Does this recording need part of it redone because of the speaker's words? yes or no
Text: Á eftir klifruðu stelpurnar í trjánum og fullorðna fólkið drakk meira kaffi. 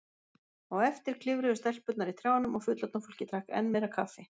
yes